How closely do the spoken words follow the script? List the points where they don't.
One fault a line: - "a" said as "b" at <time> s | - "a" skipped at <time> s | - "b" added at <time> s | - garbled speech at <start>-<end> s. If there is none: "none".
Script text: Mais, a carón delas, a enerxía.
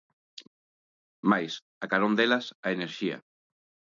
none